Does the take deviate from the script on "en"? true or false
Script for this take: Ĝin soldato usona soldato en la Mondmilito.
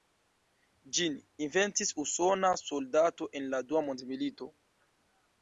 false